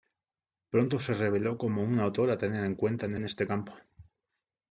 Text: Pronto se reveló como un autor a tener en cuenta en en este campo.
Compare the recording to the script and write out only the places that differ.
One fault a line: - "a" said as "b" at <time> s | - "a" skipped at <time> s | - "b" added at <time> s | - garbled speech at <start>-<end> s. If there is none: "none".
none